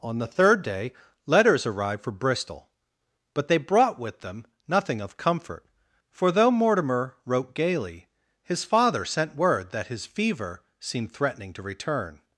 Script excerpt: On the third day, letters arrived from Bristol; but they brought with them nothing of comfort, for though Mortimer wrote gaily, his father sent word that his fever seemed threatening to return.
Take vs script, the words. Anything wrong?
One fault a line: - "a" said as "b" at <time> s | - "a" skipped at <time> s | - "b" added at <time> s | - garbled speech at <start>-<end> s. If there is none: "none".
- "from" said as "for" at 2.0 s